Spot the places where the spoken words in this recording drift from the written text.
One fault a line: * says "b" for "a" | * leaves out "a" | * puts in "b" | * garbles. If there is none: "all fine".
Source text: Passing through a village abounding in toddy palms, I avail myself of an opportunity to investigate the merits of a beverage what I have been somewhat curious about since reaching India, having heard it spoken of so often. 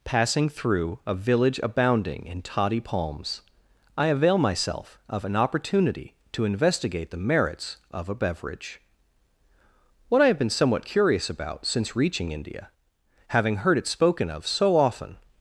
all fine